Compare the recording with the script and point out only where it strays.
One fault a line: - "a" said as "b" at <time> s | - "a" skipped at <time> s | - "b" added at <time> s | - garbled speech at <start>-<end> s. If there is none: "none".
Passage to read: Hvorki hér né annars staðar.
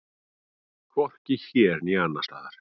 none